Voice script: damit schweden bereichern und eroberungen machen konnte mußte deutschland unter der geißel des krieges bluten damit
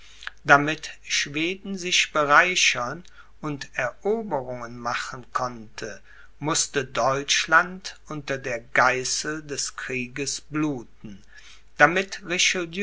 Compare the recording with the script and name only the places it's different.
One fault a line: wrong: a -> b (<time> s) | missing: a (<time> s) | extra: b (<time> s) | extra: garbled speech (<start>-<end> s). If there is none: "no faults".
extra: sich (1.8 s)